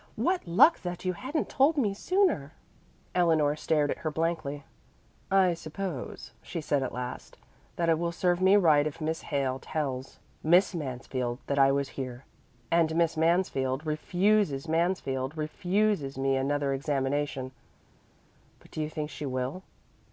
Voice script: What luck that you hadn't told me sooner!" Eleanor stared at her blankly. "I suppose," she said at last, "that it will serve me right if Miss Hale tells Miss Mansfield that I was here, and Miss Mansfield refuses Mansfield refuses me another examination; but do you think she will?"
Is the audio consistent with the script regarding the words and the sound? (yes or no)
yes